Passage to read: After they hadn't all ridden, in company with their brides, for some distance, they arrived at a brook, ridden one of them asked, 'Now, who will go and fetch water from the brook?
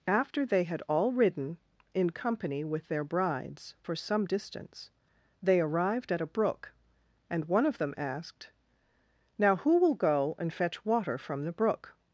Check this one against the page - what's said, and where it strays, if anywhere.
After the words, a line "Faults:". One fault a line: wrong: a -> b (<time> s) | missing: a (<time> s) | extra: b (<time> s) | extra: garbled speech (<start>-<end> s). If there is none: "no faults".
After they had all ridden, in company with their brides, for some distance, they arrived at a brook, and one of them asked, 'Now, who will go and fetch water from the brook?
Faults:
wrong: hadn't -> had (0.6 s)
wrong: ridden -> and (7.3 s)